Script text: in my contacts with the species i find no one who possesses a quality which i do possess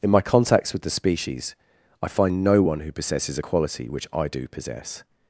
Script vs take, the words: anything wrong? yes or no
no